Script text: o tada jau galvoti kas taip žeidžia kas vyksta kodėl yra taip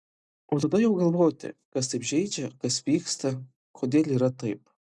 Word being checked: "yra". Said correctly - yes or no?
yes